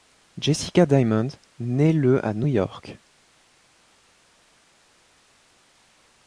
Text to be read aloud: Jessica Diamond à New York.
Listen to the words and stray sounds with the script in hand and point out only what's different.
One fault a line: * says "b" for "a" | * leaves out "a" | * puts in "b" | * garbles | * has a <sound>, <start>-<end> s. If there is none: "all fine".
* puts in "naît le"